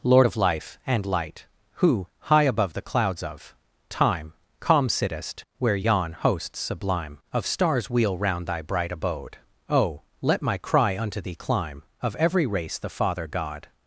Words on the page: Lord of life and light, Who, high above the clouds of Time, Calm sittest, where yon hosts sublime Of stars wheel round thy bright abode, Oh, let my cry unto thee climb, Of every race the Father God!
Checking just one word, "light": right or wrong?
right